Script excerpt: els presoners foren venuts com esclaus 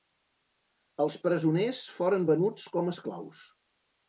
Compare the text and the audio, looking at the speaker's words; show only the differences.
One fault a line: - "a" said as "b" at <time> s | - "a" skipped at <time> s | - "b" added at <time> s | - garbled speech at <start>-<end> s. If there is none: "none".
none